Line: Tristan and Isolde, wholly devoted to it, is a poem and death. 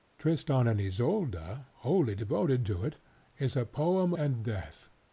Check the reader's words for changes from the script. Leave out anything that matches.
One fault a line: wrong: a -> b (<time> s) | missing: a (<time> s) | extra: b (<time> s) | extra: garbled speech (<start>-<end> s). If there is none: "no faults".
no faults